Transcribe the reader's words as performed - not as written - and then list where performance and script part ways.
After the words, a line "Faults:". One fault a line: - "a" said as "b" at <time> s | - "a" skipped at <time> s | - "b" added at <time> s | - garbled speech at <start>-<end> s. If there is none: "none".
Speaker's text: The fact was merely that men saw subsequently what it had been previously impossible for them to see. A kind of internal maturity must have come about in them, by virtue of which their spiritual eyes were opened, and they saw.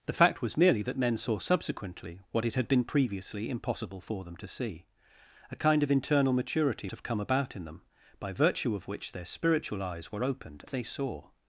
The fact was merely that men saw subsequently what it had been previously impossible for them to see. A kind of internal maturity have come about in them, by virtue of which their spiritual eyes were opened, they saw.
Faults:
- "must" skipped at 6.9 s
- "and" skipped at 10.6 s